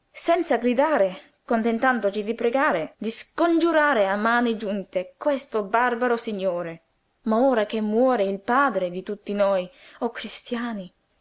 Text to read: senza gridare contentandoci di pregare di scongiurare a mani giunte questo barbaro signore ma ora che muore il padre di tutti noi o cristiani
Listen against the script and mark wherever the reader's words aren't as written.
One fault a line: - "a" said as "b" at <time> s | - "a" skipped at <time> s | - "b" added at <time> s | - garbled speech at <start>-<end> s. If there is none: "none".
none